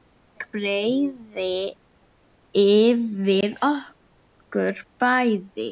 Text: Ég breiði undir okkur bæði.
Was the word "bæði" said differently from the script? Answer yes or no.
no